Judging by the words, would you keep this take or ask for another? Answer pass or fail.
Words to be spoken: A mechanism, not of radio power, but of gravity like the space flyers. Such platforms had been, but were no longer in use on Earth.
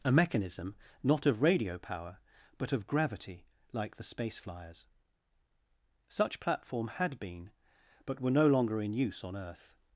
fail